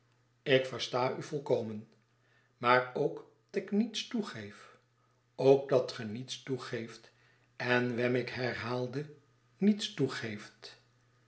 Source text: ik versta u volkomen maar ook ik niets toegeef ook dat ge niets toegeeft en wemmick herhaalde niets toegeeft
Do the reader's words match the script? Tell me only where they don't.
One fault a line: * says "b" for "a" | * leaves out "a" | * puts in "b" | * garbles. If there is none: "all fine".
all fine